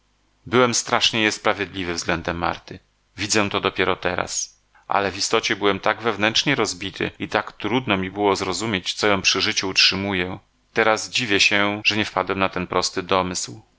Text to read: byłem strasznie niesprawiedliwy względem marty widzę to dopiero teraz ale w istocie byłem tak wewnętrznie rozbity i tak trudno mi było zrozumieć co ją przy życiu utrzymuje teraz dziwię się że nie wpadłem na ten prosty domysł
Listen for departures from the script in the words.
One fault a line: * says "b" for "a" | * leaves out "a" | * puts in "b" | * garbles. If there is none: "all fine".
all fine